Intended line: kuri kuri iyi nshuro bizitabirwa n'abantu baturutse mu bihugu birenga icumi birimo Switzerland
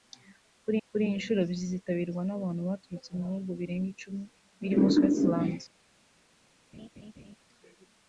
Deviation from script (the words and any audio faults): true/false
true